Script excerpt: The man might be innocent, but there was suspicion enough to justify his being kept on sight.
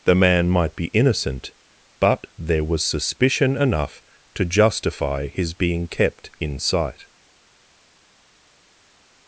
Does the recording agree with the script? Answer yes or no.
no